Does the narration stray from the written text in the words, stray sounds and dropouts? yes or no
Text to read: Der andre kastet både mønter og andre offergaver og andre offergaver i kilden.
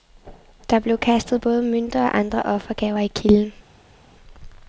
yes